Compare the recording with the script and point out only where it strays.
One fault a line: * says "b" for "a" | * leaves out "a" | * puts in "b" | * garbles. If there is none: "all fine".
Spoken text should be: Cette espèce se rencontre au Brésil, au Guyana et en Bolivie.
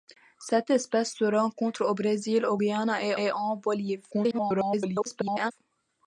* puts in "et"
* garbles